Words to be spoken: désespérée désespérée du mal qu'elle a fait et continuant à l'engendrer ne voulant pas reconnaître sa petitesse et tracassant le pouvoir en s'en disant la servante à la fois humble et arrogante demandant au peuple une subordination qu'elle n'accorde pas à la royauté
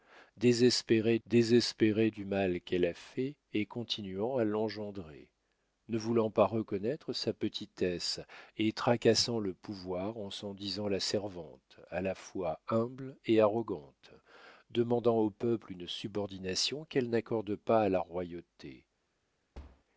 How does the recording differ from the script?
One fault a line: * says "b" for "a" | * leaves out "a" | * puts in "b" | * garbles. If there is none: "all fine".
all fine